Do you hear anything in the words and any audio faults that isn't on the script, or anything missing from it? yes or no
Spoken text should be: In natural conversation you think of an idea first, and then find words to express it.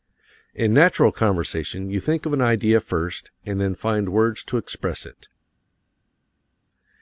no